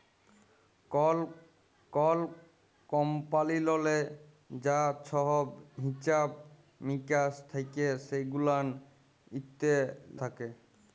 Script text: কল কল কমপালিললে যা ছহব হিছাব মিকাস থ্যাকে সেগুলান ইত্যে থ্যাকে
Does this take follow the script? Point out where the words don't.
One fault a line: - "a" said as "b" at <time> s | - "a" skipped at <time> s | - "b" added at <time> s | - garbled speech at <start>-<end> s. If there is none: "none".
none